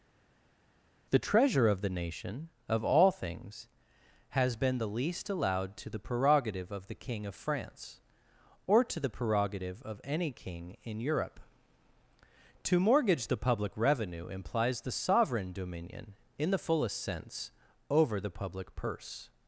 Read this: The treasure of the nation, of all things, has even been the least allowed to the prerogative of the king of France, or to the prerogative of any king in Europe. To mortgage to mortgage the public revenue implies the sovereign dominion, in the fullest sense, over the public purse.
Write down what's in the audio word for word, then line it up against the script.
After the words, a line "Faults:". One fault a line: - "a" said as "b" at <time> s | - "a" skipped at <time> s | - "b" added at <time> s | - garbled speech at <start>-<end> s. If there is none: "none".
The treasure of the nation, of all things, has been the least allowed to the prerogative of the king of France, or to the prerogative of any king in Europe. To mortgage the public revenue implies the sovereign dominion, in the fullest sense, over the public purse.
Faults:
- "even" skipped at 4.6 s
- "to mortgage" skipped at 13.3 s